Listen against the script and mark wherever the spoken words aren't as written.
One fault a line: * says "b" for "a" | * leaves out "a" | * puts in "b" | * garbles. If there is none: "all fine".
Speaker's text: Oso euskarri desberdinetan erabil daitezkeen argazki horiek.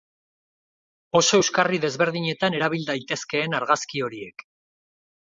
all fine